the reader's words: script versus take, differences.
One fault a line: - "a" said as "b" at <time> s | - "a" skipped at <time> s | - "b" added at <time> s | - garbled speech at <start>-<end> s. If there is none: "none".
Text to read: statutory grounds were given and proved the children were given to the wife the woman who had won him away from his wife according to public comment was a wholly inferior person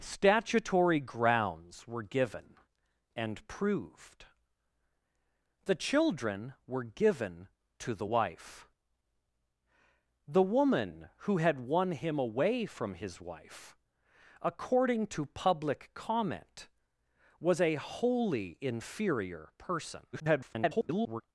- garbled speech at 20.1-21.2 s